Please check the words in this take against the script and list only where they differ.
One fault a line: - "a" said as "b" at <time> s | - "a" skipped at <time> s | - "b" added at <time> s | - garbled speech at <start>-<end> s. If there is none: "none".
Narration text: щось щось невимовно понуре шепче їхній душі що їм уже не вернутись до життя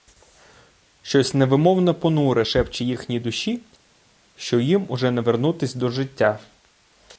- "щось" skipped at 1.3 s